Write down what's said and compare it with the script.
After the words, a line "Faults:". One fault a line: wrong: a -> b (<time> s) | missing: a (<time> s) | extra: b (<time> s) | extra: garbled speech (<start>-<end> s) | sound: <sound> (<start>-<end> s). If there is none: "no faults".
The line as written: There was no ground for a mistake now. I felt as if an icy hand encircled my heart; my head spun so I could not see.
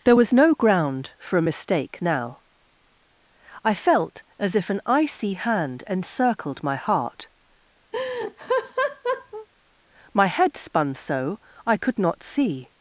There was no ground for a mistake now. I felt as if an icy hand encircled my heart; my head spun so I could not see.
Faults:
sound: laugh (7.9-9.5 s)